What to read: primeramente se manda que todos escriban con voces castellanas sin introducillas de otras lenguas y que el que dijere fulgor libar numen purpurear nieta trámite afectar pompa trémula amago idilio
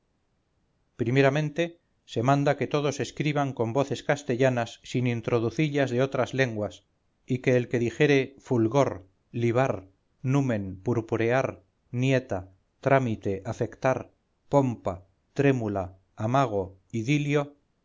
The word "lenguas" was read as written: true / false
true